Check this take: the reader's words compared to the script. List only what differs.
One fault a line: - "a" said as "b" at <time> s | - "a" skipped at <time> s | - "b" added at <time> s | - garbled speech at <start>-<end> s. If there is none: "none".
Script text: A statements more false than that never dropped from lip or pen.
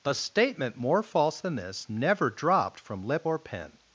- "statements" said as "statement" at 0.1 s
- "that" said as "this" at 1.6 s